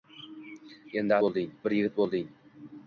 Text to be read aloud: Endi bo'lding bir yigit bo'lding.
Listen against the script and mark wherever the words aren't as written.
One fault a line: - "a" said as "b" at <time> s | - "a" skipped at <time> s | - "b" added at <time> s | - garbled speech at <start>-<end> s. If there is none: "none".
none